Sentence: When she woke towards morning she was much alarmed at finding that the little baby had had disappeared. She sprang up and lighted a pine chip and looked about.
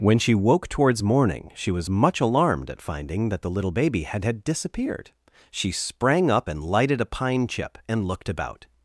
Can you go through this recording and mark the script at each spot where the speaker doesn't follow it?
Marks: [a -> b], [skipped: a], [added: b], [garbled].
When she woke towards morning she was much alarmed at finding that the little baby had had disappeared. She sprang up and lighted a pine chip and looked about.